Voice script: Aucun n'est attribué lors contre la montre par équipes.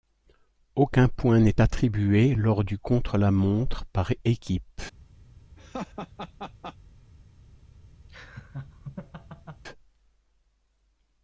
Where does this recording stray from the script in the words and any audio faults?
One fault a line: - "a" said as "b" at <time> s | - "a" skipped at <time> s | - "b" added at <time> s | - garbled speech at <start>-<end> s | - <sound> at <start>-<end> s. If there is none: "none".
- "point" added at 1.1 s
- "du" added at 2.6 s
- laugh at 5.6-6.8 s
- laugh at 8.1-9.6 s